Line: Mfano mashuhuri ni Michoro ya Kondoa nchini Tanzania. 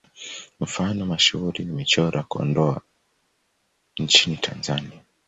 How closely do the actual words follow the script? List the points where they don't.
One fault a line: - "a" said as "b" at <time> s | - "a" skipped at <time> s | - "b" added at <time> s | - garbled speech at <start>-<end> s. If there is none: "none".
none